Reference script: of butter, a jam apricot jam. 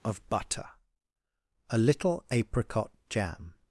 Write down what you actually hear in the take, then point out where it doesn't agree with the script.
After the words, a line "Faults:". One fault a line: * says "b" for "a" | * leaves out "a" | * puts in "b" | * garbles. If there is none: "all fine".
of butter, a little apricot jam.
Faults:
* says "little" for "jam"